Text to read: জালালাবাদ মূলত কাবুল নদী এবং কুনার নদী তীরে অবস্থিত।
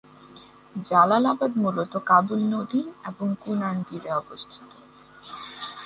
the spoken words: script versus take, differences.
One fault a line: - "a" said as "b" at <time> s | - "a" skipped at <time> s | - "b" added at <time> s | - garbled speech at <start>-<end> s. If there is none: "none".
- "নদী" skipped at 3.8 s